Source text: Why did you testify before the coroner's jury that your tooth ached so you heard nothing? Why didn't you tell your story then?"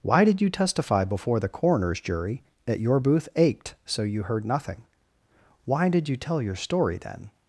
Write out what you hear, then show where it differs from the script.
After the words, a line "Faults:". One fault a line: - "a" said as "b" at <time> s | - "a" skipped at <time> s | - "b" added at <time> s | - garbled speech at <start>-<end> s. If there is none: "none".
Why did you testify before the coroner's jury that your booth ached so you heard nothing? Why did you tell your story then?"
Faults:
- "tooth" said as "booth" at 3.0 s
- "didn't" said as "did" at 5.9 s